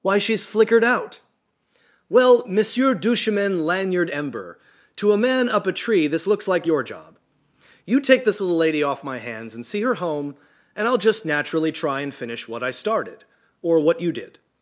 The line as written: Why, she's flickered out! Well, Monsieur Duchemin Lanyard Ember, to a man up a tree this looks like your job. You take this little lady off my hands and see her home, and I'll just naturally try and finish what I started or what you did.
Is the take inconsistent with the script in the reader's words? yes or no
no